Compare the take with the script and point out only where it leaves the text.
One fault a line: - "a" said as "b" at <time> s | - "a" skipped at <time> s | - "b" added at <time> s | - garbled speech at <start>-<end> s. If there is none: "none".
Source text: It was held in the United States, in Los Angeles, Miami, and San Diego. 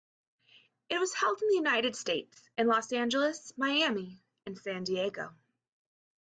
none